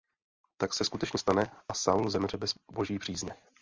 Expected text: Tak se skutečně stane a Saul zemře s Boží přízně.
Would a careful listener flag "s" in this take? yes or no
yes